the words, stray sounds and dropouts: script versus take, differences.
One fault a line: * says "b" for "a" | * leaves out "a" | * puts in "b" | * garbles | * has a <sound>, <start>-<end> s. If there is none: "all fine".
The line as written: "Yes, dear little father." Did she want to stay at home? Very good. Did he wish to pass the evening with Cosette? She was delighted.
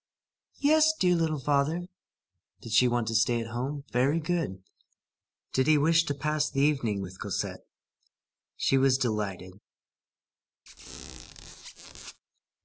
* has a squeak, 10.7-12.2 s